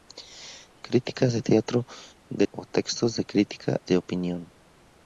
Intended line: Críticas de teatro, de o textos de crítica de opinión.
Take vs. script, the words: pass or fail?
pass